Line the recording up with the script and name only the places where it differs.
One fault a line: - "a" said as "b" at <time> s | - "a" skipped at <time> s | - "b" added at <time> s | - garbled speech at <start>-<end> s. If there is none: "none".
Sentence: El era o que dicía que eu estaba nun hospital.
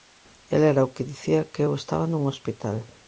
none